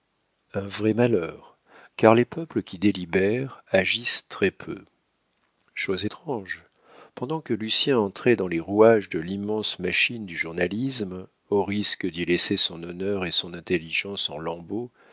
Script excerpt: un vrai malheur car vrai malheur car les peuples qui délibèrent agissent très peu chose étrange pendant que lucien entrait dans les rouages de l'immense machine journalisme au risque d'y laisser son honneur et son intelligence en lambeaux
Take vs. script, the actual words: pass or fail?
fail